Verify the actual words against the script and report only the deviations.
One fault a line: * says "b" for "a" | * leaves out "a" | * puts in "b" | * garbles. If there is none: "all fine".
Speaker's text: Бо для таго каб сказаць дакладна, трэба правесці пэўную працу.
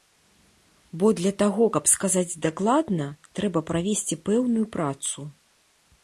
all fine